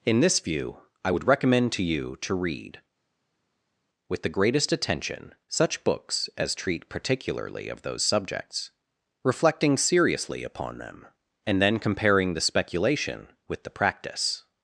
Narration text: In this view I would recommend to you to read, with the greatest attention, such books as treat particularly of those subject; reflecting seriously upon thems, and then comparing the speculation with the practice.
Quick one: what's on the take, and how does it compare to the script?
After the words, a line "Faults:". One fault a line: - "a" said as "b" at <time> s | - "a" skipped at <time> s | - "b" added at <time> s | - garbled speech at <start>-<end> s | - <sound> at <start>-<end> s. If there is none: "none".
In this view I would recommend to you to read, with the greatest attention, such books as treat particularly of those subjects; reflecting seriously upon them, and then comparing the speculation with the practice.
Faults:
- "subject" said as "subjects" at 8.0 s
- "thems" said as "them" at 10.8 s